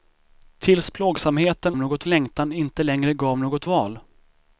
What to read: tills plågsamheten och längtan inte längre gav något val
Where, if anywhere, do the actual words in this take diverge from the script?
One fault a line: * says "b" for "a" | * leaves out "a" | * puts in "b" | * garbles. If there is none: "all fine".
* says "något" for "och"